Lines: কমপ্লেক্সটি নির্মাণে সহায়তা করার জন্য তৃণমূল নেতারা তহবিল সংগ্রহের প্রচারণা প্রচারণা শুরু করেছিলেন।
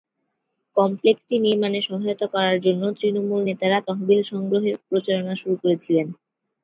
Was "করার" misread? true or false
false